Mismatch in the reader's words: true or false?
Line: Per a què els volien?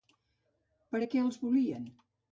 false